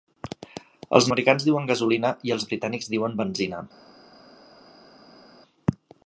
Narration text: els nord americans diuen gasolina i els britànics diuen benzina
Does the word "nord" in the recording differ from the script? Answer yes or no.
yes